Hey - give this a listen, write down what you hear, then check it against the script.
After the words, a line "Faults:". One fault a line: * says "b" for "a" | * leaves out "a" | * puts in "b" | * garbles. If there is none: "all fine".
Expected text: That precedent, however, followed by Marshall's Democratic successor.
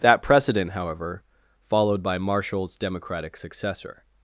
That precedent, however, followed by Marshall's Democratic successor.
Faults:
all fine